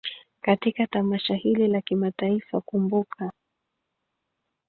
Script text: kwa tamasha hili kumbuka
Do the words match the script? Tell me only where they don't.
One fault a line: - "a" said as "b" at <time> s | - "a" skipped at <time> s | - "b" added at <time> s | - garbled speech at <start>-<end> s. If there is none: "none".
- "kwa" said as "katika" at 0.4 s
- "la kimataifa" added at 1.7 s